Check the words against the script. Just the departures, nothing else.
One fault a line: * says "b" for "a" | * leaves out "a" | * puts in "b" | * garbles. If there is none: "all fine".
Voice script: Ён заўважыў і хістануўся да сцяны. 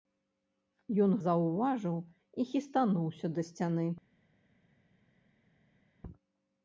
all fine